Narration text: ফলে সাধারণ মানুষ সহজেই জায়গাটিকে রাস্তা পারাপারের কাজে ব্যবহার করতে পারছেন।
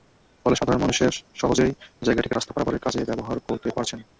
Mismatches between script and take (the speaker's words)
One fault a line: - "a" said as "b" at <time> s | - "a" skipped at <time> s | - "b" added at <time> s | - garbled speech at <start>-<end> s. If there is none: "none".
none